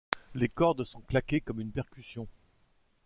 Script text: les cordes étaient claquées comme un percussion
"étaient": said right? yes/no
no